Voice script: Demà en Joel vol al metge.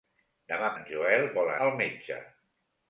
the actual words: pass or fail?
pass